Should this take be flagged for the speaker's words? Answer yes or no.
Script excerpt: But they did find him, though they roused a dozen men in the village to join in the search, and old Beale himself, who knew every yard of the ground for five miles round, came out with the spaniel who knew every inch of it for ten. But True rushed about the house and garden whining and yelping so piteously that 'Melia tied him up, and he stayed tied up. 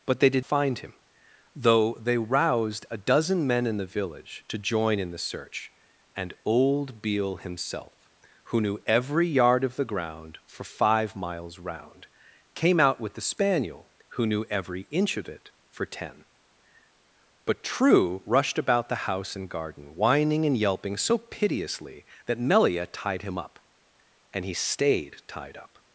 no